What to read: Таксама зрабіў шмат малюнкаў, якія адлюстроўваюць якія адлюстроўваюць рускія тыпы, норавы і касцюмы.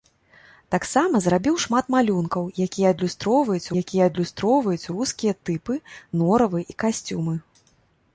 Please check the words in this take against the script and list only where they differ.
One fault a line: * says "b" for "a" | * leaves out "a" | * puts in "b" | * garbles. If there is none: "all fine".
all fine